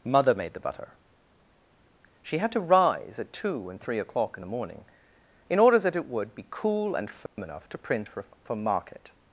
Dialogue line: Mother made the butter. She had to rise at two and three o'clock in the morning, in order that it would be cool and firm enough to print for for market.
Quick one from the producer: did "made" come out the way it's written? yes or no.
yes